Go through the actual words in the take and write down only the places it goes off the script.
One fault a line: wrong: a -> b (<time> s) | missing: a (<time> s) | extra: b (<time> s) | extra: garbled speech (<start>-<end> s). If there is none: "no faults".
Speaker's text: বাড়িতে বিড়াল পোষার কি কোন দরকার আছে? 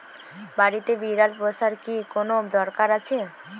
no faults